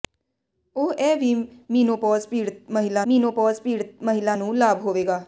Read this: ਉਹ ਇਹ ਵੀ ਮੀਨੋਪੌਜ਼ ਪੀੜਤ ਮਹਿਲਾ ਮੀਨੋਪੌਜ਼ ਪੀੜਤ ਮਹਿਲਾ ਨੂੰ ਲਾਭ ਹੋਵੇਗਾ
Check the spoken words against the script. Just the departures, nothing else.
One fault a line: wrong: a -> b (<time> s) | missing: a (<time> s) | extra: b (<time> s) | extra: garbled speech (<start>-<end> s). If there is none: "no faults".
no faults